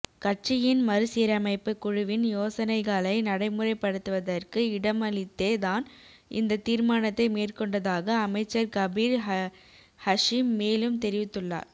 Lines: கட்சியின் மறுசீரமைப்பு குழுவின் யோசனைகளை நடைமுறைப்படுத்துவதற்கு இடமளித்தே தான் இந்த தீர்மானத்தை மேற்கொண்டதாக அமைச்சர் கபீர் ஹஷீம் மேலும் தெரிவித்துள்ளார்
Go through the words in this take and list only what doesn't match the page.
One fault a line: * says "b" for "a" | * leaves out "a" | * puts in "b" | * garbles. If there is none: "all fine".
all fine